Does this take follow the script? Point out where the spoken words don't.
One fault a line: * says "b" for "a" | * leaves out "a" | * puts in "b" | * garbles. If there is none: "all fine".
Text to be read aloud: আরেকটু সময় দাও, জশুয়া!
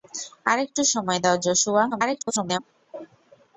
* garbles